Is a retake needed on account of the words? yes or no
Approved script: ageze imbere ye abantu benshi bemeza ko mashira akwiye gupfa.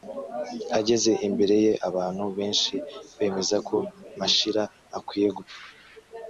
no